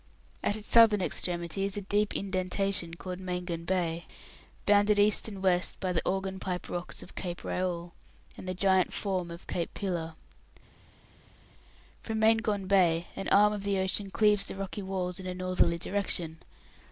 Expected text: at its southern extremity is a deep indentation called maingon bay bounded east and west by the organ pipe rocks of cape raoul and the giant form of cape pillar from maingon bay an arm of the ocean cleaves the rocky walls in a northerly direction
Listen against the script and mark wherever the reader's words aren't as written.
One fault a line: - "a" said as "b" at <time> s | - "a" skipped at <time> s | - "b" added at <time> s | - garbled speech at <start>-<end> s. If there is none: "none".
none